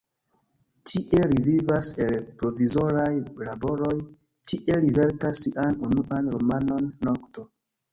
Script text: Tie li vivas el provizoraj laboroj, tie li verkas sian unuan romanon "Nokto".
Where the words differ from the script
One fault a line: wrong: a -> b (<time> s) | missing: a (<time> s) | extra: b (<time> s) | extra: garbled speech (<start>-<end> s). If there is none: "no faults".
no faults